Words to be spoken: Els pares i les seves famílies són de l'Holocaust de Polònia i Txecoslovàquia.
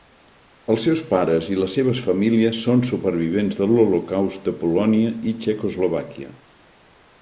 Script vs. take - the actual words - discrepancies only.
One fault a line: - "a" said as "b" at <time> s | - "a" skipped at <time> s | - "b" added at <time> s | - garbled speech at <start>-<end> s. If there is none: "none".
- "seus" added at 0.9 s
- "supervivents" added at 2.9 s